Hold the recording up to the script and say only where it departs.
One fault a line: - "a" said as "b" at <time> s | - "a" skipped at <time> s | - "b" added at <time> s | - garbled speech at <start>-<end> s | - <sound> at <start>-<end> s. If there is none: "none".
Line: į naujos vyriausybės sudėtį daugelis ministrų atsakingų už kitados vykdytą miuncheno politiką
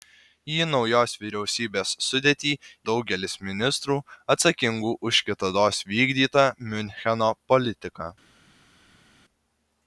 none